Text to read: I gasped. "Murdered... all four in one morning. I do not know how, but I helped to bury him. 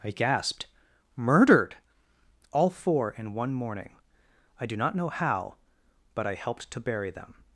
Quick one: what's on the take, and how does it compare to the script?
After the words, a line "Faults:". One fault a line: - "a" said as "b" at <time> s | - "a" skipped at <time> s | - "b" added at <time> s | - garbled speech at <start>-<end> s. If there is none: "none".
I gasped. "Murdered... all four in one morning. I do not know how, but I helped to bury them.
Faults:
- "him" said as "them" at 7.1 s